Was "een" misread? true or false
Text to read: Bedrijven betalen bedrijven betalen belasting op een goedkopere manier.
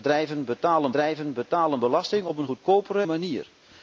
false